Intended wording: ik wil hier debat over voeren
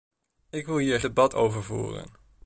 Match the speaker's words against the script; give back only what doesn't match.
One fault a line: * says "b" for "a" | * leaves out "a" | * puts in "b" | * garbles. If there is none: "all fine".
all fine